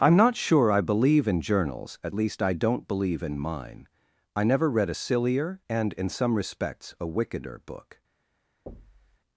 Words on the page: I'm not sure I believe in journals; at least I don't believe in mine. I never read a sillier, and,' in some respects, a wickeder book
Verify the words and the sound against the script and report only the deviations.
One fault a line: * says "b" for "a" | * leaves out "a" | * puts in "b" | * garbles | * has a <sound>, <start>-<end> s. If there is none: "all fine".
* has a thud, 8.7-9.2 s